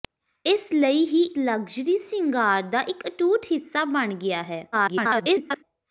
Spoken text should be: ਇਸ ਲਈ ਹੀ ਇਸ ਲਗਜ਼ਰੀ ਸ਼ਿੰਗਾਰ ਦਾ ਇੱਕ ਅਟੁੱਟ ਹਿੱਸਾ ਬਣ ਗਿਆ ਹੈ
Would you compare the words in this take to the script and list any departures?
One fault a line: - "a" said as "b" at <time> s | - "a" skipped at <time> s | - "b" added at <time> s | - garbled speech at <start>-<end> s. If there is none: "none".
- "ਇਸ" skipped at 1.2 s
- garbled speech at 4.7-5.6 s